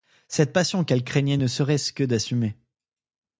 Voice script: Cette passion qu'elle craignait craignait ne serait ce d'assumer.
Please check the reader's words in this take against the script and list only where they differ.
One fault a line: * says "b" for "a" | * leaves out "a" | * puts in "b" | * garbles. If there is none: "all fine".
* leaves out "craignait"
* puts in "que"